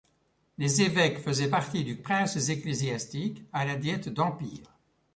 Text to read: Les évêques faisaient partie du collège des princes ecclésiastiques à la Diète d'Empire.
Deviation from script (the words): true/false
true